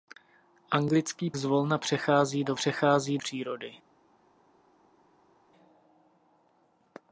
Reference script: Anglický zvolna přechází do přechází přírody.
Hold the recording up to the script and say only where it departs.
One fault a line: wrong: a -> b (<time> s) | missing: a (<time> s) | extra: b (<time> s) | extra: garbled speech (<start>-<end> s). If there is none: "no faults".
no faults